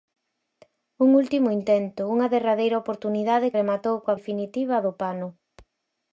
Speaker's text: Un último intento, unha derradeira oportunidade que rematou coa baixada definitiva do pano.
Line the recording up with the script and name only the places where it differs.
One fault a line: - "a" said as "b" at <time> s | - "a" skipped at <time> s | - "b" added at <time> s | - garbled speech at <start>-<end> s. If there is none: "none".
- "que" skipped at 3.5 s
- "baixada" skipped at 4.2 s